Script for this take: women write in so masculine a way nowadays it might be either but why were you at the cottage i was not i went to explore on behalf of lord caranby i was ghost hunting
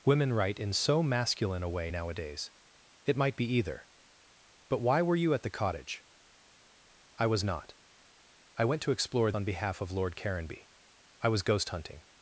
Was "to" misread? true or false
false